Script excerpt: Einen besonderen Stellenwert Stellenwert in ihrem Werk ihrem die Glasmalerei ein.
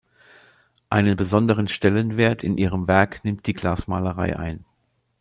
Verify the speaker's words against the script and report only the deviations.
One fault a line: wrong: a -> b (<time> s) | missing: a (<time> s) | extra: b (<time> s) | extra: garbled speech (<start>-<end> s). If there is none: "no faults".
missing: Stellenwert (2.4 s)
wrong: ihrem -> nimmt (3.2 s)